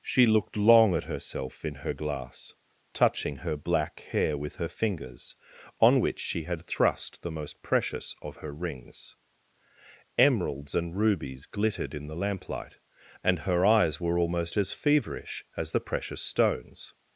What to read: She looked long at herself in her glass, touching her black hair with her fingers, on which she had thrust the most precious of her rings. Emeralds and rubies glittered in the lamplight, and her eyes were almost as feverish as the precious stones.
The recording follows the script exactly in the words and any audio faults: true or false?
true